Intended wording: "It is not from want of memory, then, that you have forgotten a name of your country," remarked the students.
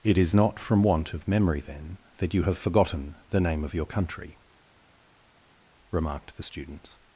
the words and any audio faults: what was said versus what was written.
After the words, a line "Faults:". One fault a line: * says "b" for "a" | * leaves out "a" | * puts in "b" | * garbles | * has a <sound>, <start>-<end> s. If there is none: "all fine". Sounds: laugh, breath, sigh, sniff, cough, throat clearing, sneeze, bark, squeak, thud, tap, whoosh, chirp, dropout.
"It is not from want of memory, then, that you have forgotten the name of your country," remarked the students.
Faults:
* says "the" for "a"